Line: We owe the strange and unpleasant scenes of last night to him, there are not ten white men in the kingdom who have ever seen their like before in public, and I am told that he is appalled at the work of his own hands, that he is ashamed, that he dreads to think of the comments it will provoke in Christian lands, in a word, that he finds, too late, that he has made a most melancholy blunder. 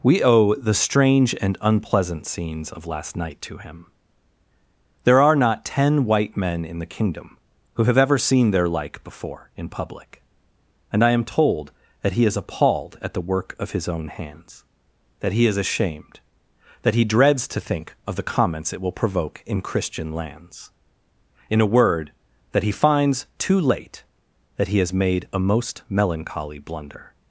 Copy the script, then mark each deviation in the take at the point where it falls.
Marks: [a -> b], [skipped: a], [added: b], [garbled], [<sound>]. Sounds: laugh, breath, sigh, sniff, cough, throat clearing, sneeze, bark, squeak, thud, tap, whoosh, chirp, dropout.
We owe the strange and unpleasant scenes of last night to him, there are not ten white men in the kingdom who have ever seen their like before in public, and I am told that he is appalled at the work of his own hands, that he is ashamed, that he dreads to think of the comments it will provoke in Christian lands, in a word, that he finds, too late, that he has made a most melancholy blunder.